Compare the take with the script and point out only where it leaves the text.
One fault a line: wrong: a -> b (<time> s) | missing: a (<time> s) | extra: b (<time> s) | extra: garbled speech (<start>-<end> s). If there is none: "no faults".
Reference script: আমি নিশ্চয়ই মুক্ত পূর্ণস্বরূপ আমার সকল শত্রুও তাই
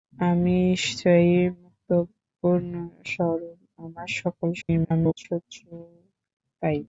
extra: garbled speech (4.6-5.3 s)